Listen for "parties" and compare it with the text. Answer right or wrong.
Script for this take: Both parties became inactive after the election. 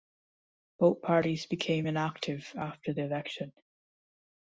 right